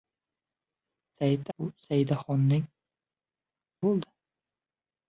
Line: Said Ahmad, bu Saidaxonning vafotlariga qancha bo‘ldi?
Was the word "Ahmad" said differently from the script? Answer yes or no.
yes